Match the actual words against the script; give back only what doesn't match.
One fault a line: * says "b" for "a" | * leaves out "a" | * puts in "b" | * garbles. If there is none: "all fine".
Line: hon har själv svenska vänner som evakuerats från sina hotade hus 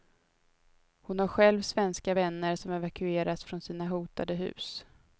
all fine